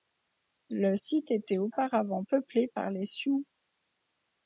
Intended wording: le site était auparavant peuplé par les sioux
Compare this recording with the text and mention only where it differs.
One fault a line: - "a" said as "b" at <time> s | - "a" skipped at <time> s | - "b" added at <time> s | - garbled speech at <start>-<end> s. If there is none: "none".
none